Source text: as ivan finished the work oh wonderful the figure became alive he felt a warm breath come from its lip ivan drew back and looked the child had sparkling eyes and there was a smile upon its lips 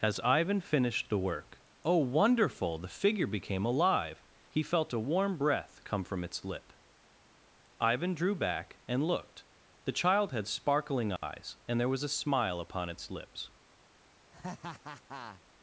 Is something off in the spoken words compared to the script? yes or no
no